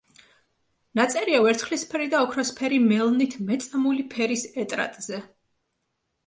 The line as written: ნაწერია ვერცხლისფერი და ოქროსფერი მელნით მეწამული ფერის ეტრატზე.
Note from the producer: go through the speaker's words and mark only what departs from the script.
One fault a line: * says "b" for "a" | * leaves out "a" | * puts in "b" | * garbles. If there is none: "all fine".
all fine